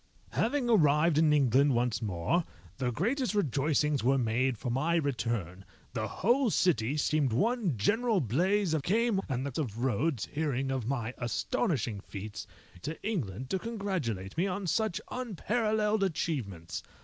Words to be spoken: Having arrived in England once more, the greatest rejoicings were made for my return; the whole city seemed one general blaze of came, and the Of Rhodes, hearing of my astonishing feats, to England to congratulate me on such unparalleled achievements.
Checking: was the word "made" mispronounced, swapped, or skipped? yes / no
no